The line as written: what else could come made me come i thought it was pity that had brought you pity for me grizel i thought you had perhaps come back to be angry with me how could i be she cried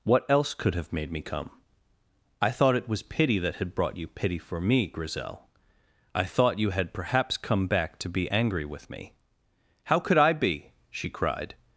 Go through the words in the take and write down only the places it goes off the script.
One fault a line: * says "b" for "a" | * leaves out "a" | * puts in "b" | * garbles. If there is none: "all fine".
* says "have" for "come"